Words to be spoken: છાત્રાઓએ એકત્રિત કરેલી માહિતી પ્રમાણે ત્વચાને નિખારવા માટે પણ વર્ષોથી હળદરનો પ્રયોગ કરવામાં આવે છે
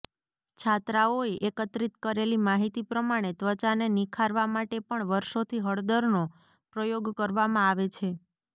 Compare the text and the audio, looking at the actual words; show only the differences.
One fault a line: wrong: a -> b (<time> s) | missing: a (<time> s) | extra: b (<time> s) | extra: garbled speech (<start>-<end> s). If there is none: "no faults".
no faults